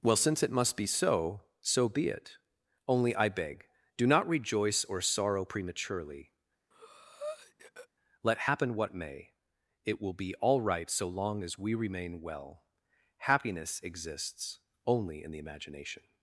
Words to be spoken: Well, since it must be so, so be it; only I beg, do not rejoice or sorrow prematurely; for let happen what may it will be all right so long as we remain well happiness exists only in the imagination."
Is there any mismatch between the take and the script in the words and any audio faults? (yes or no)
yes